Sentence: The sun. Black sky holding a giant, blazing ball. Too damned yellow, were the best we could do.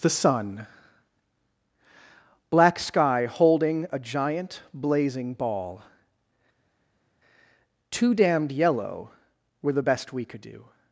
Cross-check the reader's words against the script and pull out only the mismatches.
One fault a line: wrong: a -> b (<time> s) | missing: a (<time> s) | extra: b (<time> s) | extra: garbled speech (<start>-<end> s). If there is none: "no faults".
no faults